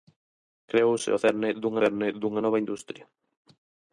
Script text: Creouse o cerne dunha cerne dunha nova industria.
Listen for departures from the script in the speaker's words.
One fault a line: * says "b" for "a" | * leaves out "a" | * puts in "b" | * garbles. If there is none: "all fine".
all fine